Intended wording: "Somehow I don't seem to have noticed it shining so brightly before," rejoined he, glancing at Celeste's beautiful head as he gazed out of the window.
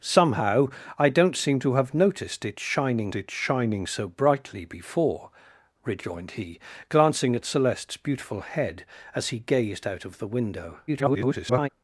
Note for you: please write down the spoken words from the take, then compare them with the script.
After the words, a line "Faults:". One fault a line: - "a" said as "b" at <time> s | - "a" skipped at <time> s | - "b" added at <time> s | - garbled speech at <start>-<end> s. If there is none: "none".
"Somehow I don't seem to have noticed it shining it shining so brightly before," rejoined he, glancing at Celeste's beautiful head as he gazed out of the window. [garbled]
Faults:
- "it shining" added at 3.1 s
- garbled speech at 10.9-11.7 s